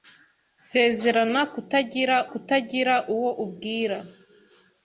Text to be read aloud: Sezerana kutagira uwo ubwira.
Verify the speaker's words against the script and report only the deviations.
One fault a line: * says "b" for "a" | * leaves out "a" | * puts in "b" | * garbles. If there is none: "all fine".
* puts in "kutagira"